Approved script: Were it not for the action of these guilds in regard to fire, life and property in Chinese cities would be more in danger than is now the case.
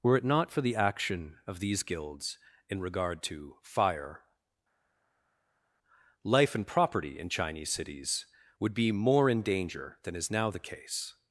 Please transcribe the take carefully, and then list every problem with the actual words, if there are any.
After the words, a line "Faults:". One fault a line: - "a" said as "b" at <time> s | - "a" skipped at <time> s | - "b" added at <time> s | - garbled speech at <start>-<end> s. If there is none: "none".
Were it not for the action of these guilds in regard to fire, life and property in Chinese cities would be more in danger than is now the case.
Faults:
none